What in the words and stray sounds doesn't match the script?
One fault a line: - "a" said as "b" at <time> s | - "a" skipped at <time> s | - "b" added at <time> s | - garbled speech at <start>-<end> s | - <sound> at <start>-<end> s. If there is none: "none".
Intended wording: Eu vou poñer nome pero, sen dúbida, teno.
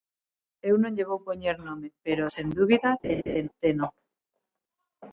- "non lle" added at 0.8 s
- laugh at 3.0-3.5 s